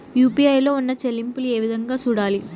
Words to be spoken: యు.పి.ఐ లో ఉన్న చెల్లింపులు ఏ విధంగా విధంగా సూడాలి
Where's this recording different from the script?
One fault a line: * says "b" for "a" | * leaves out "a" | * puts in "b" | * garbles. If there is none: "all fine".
* leaves out "విధంగా"